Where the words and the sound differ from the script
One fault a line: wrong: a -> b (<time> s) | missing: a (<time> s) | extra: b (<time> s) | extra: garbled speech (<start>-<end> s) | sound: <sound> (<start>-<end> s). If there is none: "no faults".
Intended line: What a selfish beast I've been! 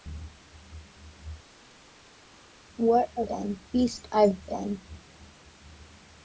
wrong: selfish -> been (3.2 s)